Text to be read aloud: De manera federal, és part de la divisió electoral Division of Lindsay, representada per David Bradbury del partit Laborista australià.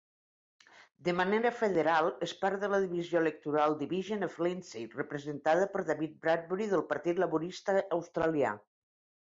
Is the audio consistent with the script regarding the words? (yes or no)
yes